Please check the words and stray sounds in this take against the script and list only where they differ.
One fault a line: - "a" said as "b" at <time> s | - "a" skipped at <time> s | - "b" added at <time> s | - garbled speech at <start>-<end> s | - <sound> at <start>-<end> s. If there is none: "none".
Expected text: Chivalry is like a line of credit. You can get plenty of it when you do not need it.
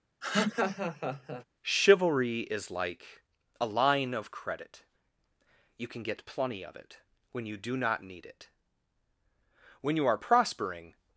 - laugh at 0.2-1.4 s
- "When you are prospering" added at 9.8 s